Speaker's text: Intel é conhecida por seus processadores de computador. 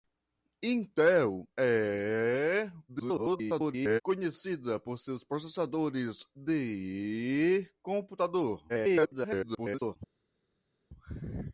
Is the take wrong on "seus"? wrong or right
right